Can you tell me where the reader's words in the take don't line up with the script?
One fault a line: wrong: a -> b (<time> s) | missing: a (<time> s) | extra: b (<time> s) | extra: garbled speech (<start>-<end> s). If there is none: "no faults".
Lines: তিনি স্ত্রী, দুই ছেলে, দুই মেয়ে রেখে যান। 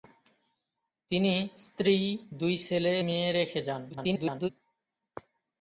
missing: দুই (2.9 s)
extra: garbled speech (3.9-4.5 s)